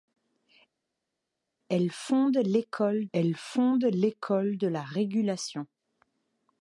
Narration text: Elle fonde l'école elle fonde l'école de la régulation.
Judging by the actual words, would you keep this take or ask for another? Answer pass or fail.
pass